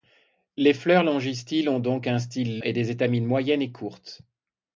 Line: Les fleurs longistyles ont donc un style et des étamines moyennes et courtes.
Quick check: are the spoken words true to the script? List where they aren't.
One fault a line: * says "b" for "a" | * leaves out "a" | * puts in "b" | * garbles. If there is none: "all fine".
all fine